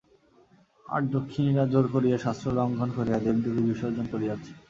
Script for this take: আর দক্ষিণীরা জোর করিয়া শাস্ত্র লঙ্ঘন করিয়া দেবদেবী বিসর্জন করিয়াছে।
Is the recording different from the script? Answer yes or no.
no